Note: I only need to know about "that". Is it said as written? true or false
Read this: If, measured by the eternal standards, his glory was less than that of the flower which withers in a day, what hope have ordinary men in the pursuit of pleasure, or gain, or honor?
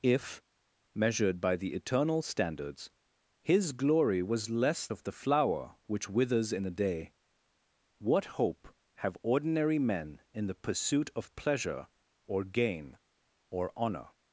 false